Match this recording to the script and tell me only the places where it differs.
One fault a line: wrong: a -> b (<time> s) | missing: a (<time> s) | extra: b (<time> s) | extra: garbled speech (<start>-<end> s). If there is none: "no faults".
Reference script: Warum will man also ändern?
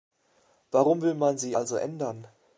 extra: sie (1.4 s)